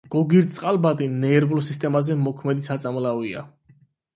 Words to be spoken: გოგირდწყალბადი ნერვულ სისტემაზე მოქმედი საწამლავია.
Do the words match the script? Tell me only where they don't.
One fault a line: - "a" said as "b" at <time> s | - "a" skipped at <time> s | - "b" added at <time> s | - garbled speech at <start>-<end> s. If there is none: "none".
none